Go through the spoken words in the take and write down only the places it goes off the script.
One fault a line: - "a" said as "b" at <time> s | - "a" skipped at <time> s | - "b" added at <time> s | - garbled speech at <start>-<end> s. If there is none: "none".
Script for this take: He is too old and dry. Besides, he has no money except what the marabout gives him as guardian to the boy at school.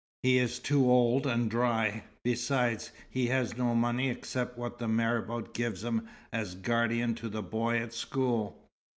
none